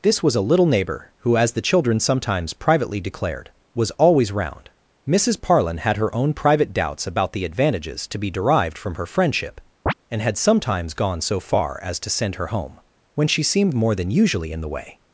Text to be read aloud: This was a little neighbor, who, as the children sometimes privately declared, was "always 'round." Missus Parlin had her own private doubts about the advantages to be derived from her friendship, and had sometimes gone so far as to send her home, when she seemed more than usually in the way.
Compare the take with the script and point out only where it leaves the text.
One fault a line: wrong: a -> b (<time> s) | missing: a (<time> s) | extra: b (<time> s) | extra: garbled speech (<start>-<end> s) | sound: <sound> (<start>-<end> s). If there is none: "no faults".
sound: chirp (9.9-9.9 s)